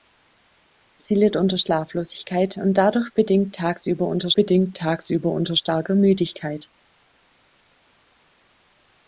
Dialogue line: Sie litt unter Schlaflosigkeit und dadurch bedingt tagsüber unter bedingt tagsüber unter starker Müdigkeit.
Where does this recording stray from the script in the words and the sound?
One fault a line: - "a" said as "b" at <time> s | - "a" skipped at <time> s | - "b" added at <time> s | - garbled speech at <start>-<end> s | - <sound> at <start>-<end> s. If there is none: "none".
none